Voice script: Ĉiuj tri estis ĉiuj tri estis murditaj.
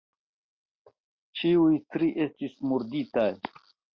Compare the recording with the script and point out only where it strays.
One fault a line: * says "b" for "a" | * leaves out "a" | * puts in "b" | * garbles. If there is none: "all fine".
* leaves out "ĉiuj tri estis"